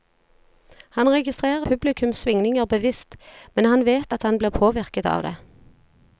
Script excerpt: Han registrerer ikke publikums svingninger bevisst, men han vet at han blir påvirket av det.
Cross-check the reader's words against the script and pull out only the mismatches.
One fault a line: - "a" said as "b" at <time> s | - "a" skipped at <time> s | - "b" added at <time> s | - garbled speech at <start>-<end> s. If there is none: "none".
- "ikke" skipped at 1.7 s